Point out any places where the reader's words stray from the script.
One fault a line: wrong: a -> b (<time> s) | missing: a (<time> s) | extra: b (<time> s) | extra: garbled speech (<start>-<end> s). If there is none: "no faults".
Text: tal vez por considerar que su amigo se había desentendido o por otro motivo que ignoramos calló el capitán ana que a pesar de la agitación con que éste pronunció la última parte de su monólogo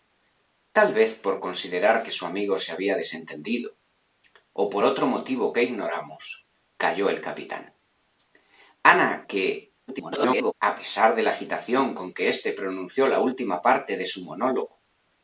extra: garbled speech (9.9-10.5 s)